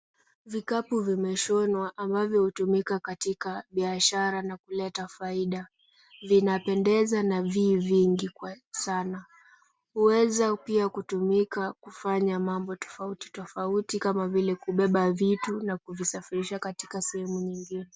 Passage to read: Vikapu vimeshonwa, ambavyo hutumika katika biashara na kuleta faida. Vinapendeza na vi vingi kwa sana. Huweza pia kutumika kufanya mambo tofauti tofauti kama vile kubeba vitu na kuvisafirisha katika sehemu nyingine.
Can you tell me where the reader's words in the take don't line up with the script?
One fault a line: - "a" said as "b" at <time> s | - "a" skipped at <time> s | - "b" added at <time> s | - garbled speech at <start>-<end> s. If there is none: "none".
none